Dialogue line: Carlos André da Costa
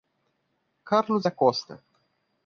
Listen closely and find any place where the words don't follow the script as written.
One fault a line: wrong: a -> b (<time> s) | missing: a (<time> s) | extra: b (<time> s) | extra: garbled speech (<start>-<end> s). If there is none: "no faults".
missing: André (1.3 s)